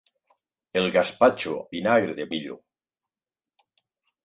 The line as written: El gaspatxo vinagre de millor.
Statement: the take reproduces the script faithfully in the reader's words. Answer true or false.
true